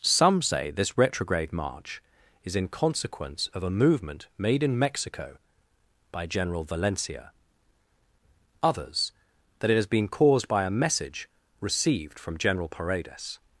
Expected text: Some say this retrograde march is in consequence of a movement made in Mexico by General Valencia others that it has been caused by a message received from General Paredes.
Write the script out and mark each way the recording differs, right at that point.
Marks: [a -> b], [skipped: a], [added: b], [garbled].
Some say this retrograde march is in consequence of a movement made in Mexico by General Valencia others that it has been caused by a message received from General Paredes.